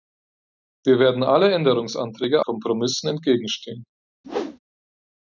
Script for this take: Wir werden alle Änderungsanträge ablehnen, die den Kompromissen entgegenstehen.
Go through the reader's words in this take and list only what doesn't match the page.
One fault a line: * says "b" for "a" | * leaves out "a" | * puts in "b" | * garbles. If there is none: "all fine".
* leaves out "ablehnen die den"